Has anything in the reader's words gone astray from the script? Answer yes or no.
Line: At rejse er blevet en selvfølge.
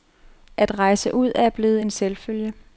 yes